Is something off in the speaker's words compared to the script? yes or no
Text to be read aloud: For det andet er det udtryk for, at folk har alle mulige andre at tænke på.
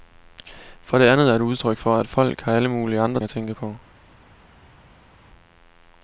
no